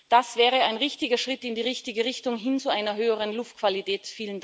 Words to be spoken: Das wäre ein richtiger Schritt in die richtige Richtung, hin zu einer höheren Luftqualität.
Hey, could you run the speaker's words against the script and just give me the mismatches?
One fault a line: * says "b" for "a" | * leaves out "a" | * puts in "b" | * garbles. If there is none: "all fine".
all fine